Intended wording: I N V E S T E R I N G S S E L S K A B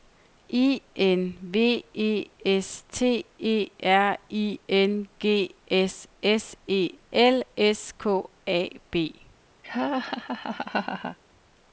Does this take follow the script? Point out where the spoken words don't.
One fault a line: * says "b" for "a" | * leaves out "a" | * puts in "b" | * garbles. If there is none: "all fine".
all fine